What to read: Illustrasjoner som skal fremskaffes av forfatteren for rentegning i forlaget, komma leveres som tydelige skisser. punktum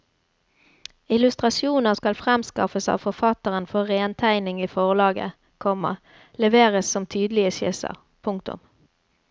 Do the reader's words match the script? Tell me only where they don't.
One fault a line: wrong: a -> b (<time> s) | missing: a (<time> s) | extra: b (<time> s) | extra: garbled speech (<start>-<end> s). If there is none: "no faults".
missing: som (1.9 s)